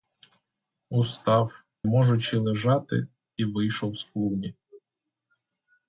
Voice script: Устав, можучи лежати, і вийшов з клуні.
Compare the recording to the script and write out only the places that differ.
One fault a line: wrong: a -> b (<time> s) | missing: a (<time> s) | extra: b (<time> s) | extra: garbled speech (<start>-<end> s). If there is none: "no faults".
no faults